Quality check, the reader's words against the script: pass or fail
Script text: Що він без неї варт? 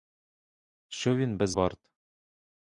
fail